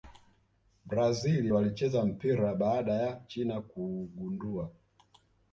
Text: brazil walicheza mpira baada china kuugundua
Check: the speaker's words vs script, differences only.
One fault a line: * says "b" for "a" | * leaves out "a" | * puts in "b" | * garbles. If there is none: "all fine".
* puts in "ya"